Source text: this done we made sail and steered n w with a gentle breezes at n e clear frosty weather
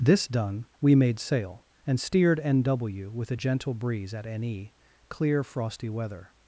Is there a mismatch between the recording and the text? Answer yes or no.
yes